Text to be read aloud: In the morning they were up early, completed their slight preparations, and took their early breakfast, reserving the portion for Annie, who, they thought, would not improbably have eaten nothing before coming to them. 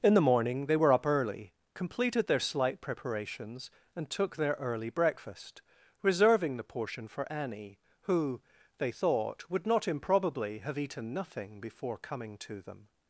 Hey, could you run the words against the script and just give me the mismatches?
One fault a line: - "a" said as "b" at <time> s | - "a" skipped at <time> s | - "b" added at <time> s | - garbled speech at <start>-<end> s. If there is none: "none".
none